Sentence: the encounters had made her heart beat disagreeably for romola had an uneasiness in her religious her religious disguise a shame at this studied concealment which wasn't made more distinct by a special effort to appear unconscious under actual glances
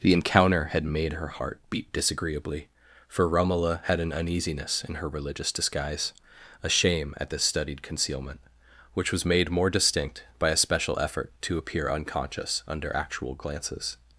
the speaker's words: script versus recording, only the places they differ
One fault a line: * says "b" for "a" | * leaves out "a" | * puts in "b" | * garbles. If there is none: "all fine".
* says "encounter" for "encounters"
* leaves out "her religious"
* says "was" for "wasn't"